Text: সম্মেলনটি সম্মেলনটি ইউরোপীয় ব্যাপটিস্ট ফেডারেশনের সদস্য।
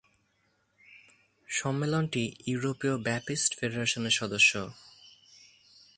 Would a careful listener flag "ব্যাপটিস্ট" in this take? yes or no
no